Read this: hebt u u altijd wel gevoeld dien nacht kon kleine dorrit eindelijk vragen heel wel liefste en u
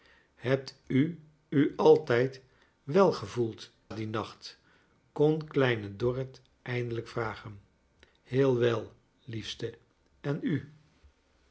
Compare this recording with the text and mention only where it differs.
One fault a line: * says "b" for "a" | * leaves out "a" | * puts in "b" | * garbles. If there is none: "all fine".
all fine